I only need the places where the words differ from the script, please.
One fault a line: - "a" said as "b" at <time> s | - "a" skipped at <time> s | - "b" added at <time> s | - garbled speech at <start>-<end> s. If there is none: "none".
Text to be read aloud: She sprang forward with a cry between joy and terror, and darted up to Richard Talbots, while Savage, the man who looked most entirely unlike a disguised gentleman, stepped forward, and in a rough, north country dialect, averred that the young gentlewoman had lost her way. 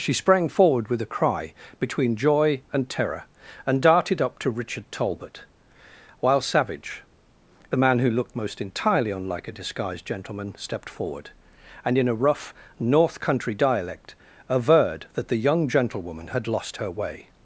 - "Talbots" said as "Talbot" at 4.9 s